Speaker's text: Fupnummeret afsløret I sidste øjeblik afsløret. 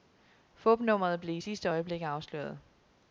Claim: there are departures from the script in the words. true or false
true